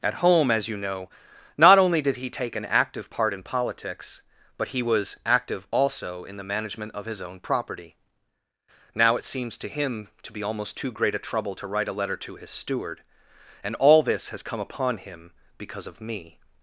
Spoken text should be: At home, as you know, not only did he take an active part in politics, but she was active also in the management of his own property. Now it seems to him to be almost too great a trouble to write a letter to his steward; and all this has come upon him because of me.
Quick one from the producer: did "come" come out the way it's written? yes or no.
yes